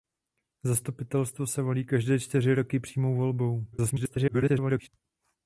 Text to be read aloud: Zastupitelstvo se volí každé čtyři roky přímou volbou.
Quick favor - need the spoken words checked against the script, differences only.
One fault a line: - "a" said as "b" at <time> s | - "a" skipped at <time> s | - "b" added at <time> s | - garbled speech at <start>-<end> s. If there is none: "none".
- garbled speech at 3.7-4.9 s